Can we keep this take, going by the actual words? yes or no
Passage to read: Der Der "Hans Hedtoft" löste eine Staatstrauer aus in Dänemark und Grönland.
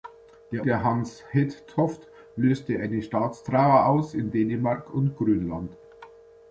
yes